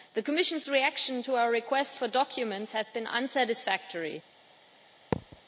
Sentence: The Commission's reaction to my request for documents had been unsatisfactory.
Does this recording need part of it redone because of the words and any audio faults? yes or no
yes